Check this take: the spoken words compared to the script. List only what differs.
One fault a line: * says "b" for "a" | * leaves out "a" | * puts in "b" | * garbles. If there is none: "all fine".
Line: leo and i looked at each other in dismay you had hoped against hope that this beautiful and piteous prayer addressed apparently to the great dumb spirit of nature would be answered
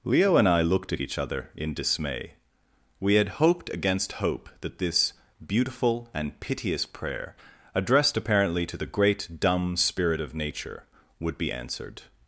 * says "we" for "you"